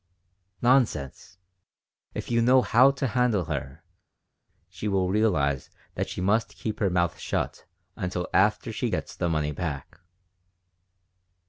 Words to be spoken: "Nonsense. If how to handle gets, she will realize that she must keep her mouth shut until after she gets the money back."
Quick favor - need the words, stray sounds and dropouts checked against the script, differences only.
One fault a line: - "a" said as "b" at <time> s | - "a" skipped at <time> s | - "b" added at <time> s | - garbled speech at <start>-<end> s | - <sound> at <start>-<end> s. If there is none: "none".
- "you know" added at 2.3 s
- "gets" said as "her" at 3.5 s